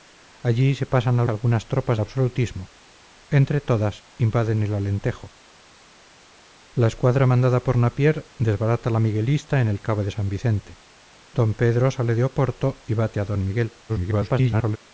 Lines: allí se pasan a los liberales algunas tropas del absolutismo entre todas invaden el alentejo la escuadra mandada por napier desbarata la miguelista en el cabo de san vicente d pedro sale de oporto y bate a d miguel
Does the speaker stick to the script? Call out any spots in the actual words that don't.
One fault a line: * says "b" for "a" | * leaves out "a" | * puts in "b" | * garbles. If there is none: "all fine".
* leaves out "los liberales"
* leaves out "del"
* garbles